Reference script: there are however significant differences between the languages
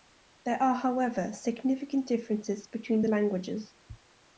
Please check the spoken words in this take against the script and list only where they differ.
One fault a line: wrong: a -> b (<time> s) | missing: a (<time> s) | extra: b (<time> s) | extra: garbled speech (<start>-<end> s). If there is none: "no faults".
no faults